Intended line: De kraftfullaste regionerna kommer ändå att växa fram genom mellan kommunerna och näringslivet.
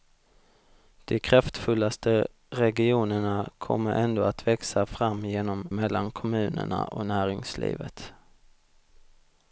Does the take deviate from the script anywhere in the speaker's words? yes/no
no